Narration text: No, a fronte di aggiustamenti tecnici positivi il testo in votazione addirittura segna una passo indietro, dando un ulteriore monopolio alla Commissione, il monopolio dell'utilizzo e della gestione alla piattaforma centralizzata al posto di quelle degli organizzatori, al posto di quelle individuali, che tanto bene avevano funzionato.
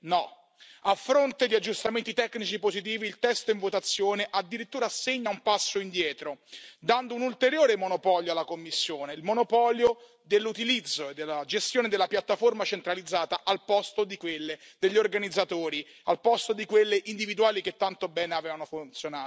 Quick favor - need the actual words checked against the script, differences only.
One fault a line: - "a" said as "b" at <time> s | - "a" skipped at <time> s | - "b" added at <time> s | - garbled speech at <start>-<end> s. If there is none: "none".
- "una" said as "un" at 5.3 s
- "alla" said as "della" at 11.9 s